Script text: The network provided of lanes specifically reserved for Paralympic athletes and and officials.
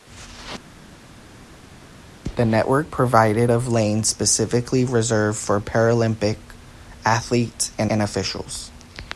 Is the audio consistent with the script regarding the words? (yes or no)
yes